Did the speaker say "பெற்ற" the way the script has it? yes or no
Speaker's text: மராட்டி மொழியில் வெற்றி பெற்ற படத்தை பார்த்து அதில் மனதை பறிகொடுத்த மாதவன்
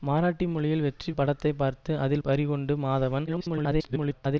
no